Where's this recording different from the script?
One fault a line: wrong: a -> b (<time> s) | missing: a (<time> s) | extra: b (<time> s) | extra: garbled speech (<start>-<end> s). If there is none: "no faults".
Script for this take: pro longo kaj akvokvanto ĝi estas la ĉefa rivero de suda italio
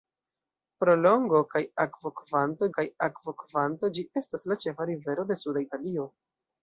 extra: kaj akvokvanto (2.7 s)